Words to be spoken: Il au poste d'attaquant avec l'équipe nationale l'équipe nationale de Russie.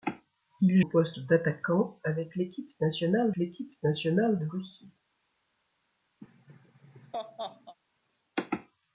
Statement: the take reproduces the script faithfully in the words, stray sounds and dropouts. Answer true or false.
false